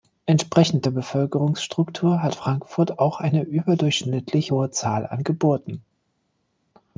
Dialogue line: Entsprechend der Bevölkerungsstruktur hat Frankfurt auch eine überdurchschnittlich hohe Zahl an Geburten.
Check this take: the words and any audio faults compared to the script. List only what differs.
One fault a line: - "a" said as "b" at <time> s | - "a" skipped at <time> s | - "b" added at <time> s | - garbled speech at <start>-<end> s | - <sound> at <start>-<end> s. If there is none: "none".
none